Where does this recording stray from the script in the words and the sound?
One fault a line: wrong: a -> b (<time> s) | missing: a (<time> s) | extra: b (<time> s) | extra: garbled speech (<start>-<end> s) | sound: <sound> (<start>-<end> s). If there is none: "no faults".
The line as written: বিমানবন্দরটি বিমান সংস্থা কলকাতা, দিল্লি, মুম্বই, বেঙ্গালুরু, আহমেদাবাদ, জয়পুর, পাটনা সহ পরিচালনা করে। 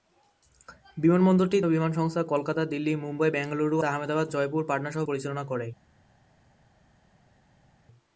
no faults